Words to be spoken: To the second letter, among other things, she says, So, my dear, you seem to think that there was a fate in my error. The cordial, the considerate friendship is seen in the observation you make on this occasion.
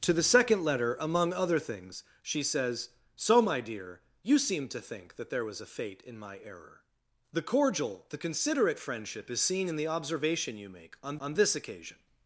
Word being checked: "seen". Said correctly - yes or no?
yes